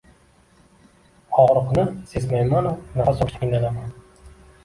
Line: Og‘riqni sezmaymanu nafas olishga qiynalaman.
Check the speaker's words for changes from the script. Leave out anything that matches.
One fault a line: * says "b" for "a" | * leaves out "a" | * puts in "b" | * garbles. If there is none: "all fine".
all fine